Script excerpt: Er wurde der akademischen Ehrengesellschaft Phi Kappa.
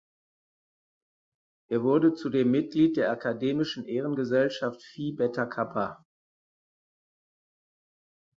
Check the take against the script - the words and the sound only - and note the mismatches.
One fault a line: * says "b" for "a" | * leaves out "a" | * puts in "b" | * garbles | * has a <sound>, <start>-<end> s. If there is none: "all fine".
* puts in "zudem Mitglied"
* puts in "Beta"